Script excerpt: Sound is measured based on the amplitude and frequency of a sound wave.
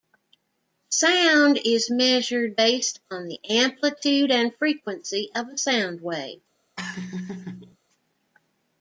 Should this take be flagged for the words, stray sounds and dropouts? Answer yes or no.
yes